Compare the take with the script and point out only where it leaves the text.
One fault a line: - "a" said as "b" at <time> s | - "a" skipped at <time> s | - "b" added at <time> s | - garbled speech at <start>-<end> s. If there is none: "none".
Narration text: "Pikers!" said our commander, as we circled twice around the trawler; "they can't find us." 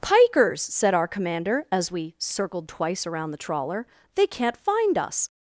none